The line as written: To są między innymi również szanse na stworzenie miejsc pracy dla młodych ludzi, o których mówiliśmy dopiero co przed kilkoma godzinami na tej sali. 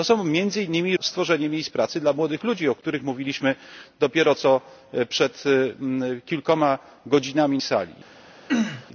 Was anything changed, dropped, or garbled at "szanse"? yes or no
yes